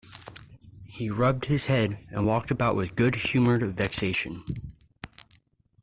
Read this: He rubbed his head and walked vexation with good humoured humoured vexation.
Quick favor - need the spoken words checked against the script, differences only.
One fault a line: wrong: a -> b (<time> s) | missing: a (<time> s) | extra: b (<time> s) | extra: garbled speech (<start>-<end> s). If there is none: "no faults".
wrong: vexation -> about (2.5 s)
missing: humoured (3.7 s)